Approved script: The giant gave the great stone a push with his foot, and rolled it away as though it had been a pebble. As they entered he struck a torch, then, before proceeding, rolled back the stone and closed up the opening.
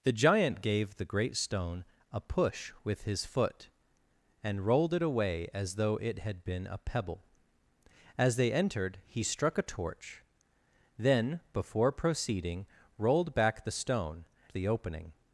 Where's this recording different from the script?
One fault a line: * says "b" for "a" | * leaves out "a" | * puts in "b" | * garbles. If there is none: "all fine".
* leaves out "and closed up"